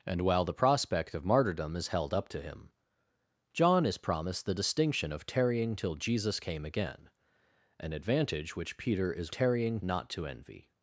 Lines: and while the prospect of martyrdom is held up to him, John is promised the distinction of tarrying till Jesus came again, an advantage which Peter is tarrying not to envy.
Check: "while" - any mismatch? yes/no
no